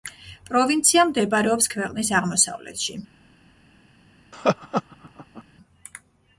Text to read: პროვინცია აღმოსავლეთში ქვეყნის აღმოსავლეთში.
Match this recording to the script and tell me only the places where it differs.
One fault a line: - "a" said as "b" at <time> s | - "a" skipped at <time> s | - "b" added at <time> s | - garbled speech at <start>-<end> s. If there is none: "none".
- "აღმოსავლეთში" said as "მდებარეობს" at 1.1 s